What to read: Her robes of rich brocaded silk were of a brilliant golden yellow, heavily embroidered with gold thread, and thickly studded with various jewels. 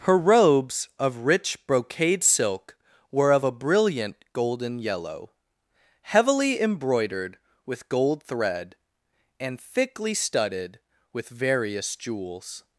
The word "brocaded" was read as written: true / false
false